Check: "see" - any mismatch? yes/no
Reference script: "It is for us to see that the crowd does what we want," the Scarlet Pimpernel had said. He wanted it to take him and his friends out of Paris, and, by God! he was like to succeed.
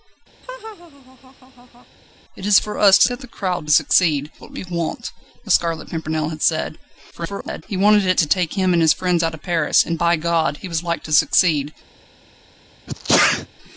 yes